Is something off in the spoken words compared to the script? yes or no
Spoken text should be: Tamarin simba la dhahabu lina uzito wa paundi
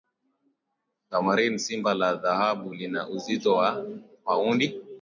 no